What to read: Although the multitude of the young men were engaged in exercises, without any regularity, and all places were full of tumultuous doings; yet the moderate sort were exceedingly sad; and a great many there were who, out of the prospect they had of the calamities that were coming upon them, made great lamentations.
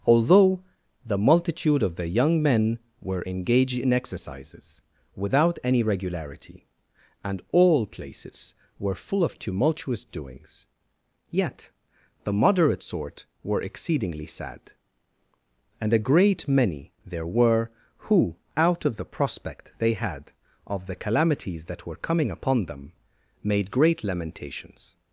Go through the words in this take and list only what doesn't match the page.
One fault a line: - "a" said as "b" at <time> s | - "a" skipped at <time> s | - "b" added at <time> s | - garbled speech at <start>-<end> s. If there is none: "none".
none